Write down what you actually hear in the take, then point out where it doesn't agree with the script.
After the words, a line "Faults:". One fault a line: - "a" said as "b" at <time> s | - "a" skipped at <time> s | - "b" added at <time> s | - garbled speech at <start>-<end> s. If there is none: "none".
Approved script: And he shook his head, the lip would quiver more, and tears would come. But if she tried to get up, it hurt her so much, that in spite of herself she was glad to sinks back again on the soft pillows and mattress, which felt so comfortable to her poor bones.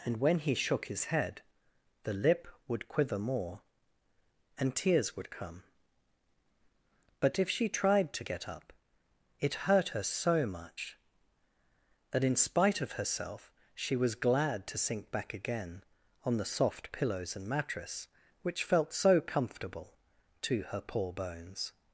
And when he shook his head, the lip would quiver more, and tears would come. But if she tried to get up, it hurt her so much, that in spite of herself she was glad to sink back again on the soft pillows and mattress, which felt so comfortable to her poor bones.
Faults:
- "when" added at 0.2 s
- "sinks" said as "sink" at 14.8 s